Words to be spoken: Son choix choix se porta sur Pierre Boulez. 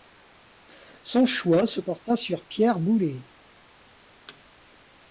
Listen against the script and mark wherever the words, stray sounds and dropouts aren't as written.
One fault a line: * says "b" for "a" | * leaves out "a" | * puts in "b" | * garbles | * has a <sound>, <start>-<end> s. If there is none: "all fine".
* leaves out "choix"
* has a thud, 4.3-4.4 s